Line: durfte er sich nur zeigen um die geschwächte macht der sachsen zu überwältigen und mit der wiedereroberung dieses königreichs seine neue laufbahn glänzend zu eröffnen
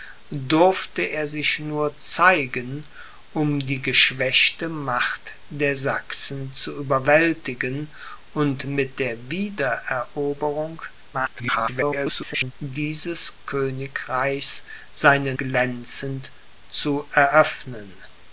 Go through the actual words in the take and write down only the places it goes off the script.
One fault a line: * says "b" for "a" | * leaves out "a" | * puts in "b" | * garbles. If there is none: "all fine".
* garbles
* leaves out "neue laufbahn"